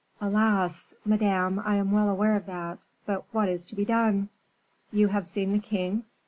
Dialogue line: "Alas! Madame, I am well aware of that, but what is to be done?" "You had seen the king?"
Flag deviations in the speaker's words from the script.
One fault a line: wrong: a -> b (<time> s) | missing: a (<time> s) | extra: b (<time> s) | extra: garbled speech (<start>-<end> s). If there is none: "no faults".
wrong: had -> have (5.1 s)